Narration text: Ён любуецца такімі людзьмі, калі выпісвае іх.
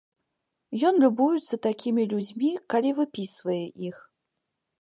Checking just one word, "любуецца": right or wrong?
right